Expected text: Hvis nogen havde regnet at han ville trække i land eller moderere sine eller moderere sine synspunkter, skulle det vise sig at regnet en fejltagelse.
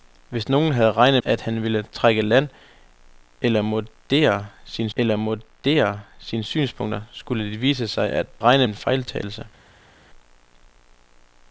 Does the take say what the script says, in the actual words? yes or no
yes